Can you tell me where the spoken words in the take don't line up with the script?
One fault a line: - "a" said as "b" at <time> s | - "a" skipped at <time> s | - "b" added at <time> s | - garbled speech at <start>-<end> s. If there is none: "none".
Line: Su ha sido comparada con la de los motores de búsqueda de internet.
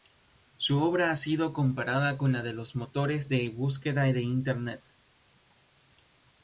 - "obra" added at 0.8 s